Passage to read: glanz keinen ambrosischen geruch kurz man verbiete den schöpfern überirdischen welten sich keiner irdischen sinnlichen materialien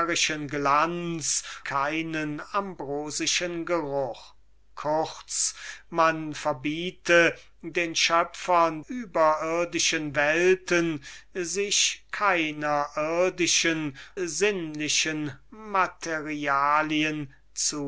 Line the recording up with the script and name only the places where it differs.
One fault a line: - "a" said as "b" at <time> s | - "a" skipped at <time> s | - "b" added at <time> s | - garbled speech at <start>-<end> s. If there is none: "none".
none